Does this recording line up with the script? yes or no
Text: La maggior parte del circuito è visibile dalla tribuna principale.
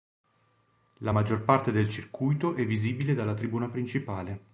yes